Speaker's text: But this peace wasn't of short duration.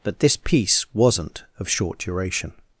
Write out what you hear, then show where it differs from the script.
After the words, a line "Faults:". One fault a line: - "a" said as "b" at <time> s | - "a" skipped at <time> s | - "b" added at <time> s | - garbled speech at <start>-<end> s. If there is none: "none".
But this peace wasn't of short duration.
Faults:
none